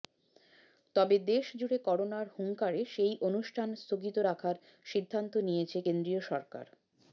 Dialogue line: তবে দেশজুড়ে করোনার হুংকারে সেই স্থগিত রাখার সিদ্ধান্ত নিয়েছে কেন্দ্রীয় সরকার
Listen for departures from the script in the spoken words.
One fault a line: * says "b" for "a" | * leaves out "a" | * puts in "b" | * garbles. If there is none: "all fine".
* puts in "অনুষ্ঠান"